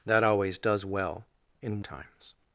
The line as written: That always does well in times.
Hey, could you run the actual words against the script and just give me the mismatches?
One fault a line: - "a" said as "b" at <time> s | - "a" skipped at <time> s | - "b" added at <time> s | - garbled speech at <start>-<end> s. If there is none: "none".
none